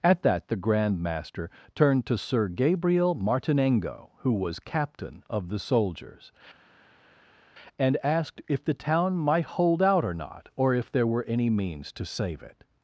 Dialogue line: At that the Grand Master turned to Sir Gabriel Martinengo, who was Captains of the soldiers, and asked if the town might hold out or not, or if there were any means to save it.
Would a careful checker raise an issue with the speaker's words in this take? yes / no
yes